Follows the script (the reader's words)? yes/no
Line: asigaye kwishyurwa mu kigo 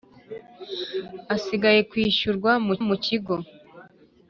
no